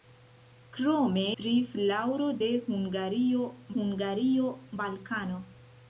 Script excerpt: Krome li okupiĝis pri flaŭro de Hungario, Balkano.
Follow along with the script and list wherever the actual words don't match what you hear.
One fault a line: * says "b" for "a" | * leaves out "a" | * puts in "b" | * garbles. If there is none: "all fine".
* leaves out "li okupiĝis"
* puts in "Hungario"